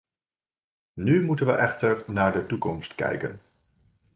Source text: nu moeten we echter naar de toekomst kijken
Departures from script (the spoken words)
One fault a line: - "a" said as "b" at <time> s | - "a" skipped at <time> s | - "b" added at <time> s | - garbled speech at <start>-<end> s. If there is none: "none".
none